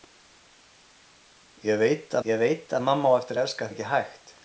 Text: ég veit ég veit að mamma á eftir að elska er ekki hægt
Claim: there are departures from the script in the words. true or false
false